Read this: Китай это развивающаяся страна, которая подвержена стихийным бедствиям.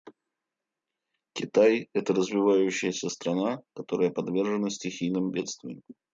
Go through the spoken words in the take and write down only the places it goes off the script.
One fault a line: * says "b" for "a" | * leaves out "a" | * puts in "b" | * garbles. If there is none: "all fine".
all fine